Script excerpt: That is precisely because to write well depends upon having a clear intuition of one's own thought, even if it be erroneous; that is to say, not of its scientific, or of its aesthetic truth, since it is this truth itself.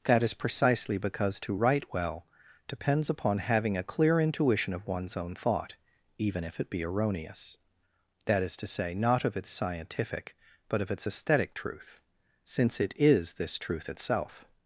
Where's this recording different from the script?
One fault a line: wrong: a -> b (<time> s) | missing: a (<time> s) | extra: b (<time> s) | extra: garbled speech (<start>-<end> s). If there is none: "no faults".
wrong: or -> but (10.7 s)